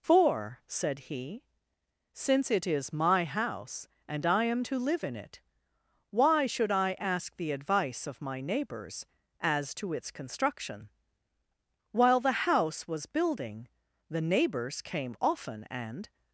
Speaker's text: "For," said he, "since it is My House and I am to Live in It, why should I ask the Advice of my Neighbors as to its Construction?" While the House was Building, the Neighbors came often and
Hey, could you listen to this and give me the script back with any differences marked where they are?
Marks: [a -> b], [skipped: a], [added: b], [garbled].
"For," said he, "since it is My House and I am to Live in It, why should I ask the Advice of my Neighbors as to its Construction?" While the House was Building, the Neighbors came often and